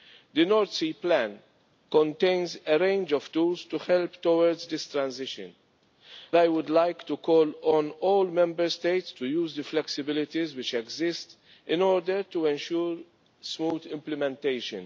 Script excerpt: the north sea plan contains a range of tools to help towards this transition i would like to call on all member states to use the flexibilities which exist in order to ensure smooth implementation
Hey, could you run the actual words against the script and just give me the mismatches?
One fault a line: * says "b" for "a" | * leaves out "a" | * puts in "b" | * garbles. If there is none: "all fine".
all fine